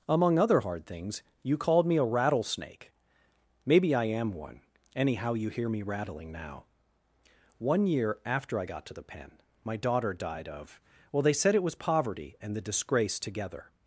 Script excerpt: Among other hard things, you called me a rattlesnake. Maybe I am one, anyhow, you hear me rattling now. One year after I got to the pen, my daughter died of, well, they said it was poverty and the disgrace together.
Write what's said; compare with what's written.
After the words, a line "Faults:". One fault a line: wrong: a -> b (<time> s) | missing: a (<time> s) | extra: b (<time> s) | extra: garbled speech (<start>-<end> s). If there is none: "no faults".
Among other hard things, you called me a rattlesnake. Maybe I am one, anyhow, you hear me rattling now. One year after I got to the pen, my daughter died of, well, they said it was poverty and the disgrace together.
Faults:
no faults